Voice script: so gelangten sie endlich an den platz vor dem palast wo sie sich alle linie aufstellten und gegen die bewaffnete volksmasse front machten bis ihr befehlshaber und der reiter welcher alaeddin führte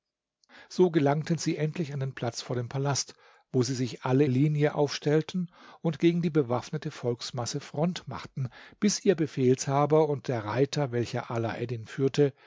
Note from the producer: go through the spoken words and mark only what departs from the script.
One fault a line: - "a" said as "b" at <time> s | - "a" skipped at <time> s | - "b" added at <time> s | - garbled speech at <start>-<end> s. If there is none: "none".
none